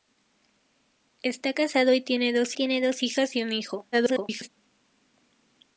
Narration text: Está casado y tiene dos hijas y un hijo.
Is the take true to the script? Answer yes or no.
no